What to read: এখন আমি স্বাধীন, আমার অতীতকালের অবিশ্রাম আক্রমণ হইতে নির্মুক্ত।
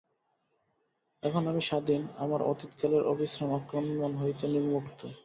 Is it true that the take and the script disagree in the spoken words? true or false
false